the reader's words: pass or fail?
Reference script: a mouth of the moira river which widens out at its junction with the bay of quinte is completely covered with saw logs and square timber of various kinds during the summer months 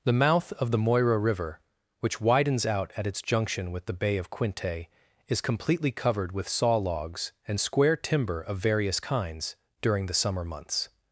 fail